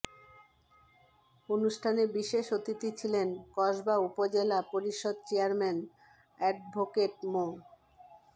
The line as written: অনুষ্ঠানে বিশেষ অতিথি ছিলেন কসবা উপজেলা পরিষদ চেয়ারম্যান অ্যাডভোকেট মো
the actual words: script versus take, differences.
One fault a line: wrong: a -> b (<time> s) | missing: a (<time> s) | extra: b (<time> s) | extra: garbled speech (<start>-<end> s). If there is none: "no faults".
no faults